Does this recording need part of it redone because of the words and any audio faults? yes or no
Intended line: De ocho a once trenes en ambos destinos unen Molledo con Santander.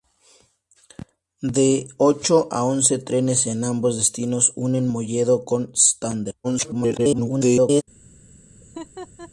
yes